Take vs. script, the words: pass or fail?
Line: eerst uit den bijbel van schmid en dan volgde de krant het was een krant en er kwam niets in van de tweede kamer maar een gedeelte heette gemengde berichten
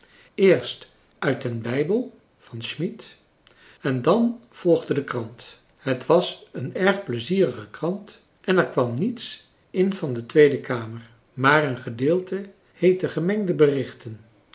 fail